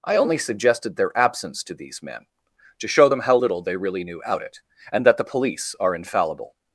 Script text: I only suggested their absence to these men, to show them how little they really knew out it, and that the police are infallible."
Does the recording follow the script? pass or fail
pass